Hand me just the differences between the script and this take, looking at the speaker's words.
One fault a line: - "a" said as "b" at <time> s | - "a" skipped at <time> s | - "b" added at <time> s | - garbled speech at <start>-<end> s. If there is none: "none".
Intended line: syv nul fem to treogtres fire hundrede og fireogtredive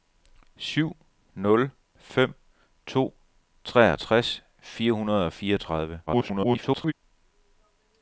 - garbled speech at 6.1-6.9 s